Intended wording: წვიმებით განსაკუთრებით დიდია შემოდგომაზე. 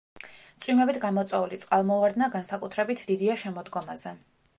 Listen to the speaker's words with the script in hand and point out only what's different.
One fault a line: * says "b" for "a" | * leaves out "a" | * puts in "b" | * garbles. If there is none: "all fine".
* puts in "გამოწვეული წყალმოვარდნა"